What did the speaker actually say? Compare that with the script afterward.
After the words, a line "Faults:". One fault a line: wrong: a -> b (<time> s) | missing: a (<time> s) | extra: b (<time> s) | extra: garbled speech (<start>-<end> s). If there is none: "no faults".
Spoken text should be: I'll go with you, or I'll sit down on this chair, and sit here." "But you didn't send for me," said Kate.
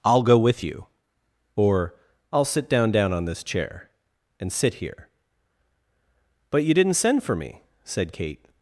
I'll go with you, or I'll sit down down on this chair, and sit here." "But you didn't send for me," said Kate.
Faults:
extra: down (2.9 s)